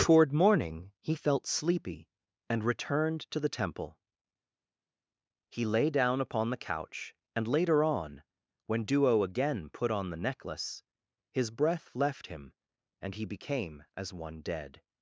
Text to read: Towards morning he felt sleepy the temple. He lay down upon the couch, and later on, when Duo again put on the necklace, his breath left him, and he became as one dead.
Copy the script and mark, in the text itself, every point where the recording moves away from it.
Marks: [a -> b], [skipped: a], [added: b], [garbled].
[Towards -> Toward] morning he felt sleepy [added: and returned to] the temple. He lay down upon the couch, and later on, when Duo again put on the necklace, his breath left him, and he became as one dead.